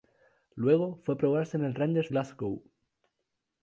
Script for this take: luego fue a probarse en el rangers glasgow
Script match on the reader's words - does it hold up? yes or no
yes